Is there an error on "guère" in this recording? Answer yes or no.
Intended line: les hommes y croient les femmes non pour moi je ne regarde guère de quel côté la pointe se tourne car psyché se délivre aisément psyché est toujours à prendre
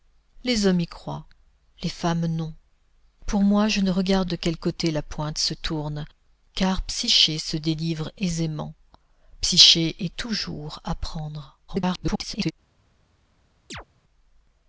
yes